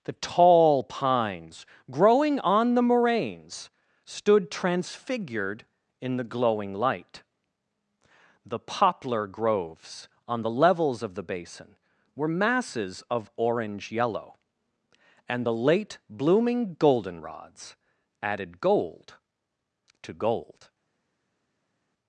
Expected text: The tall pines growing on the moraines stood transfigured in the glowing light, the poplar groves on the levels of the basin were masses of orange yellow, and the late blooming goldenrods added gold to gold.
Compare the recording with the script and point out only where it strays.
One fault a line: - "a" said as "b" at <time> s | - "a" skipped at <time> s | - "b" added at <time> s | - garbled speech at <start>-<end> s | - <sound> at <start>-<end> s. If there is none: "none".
none